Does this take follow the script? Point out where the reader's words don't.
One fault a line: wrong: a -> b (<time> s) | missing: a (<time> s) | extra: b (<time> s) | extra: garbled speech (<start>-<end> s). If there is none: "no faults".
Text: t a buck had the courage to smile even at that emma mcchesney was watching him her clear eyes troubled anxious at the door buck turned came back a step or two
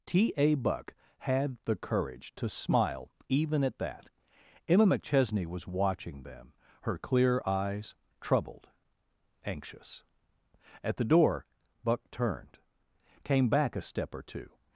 wrong: him -> them (6.2 s)